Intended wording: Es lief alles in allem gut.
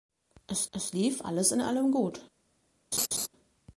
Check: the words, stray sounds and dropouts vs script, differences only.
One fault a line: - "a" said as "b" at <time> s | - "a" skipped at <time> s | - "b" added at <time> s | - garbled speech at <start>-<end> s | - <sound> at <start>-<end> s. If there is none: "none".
- "es" added at 0.7 s
- laugh at 2.9-3.3 s